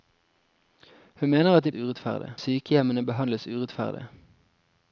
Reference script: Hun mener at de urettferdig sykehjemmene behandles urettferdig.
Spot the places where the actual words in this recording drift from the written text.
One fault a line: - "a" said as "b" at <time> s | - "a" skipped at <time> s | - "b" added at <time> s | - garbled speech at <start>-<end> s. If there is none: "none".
none